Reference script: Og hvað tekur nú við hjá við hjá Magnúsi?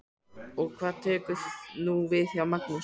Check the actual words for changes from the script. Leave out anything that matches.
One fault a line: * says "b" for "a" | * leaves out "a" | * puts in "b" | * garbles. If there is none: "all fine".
* leaves out "við hjá"